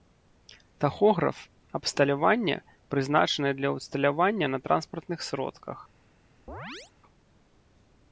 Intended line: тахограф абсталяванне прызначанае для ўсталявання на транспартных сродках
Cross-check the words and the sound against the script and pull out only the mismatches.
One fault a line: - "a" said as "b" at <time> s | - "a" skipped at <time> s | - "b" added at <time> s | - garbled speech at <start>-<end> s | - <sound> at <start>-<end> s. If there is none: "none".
- chirp at 6.5-6.9 s